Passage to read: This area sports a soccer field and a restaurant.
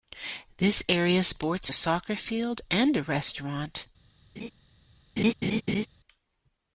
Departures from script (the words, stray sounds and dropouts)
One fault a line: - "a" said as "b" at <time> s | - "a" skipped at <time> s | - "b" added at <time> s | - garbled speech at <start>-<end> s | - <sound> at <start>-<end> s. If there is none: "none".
- laugh at 4.4-4.5 s
- laugh at 5.2-5.9 s